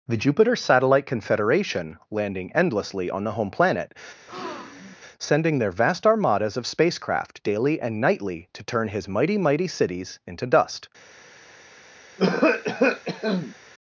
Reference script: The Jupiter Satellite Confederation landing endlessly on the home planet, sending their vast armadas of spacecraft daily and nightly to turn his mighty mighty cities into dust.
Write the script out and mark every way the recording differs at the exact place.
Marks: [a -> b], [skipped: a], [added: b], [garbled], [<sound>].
The Jupiter Satellite Confederation landing endlessly on the home planet, [breath] sending their vast armadas of spacecraft daily and nightly to turn his mighty mighty cities into dust. [cough]